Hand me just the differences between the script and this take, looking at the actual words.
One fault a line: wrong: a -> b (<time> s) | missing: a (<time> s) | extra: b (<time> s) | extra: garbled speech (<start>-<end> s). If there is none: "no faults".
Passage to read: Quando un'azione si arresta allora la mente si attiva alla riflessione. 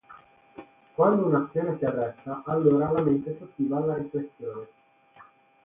no faults